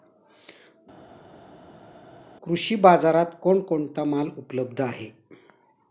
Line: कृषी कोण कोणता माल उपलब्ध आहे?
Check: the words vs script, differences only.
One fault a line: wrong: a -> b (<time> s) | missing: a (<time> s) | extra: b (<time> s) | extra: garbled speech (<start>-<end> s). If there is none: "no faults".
extra: बाजारात (2.8 s)